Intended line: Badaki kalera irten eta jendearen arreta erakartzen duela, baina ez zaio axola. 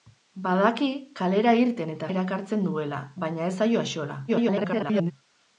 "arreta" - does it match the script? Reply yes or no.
no